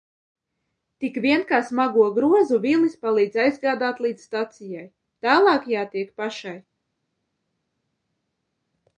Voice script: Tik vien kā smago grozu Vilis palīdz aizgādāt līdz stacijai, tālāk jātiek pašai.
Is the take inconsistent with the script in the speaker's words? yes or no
no